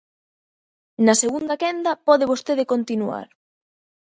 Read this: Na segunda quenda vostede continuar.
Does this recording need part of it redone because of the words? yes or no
yes